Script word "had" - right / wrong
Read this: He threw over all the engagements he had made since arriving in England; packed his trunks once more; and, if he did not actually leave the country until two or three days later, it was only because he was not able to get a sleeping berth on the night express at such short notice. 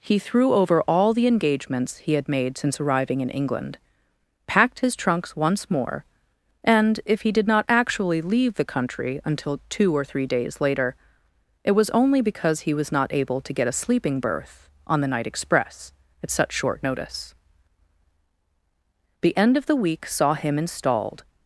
right